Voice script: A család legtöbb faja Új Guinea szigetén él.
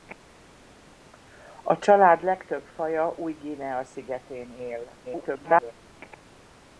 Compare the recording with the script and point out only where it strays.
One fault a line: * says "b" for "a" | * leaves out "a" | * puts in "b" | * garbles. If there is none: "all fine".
* garbles